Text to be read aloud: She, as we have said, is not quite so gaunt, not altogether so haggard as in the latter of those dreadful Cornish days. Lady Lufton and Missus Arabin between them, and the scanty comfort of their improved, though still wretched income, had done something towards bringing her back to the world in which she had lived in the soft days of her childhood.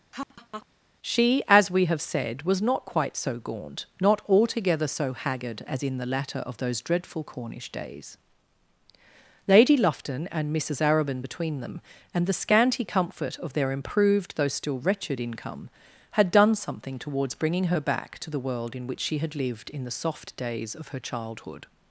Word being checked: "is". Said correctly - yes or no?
no